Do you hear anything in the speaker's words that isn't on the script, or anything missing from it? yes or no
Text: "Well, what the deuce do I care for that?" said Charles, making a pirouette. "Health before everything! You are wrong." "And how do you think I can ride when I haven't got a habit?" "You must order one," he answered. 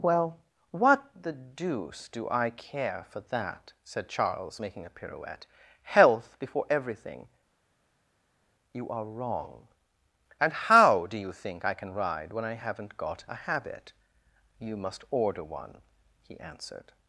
no